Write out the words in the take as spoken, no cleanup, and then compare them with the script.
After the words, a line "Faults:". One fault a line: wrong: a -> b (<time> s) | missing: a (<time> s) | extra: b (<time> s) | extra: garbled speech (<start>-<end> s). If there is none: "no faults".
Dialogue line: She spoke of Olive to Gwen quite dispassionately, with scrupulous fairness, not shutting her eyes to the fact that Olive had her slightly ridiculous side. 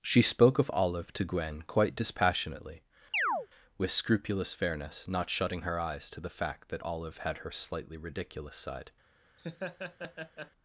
She spoke of Olive to Gwen quite dispassionately, with scrupulous fairness, not shutting her eyes to the fact that Olive had her slightly ridiculous side.
Faults:
no faults